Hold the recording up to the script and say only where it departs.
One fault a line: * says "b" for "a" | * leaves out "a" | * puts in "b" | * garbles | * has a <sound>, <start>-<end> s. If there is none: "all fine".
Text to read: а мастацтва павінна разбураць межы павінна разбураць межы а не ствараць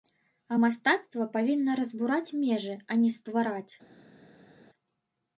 * leaves out "павінна разбураць межы"